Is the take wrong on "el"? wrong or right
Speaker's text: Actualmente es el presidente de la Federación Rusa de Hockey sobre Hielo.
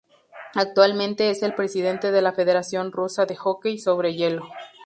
right